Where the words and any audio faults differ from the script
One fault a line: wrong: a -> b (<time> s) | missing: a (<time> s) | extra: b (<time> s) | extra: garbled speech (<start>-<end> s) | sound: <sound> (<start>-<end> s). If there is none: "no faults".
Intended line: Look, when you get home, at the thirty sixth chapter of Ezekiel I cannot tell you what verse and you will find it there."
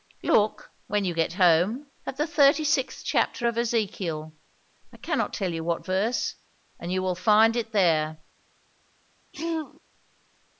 sound: throat clearing (9.3-9.8 s)